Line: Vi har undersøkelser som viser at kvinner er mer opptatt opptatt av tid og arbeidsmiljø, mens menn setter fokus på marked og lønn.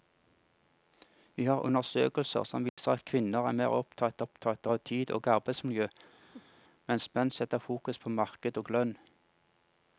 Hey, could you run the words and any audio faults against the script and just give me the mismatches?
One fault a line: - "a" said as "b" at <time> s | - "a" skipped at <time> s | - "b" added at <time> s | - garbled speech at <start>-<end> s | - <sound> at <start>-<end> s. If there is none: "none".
- dropout at 2.7-2.8 s
- laugh at 6.2-6.6 s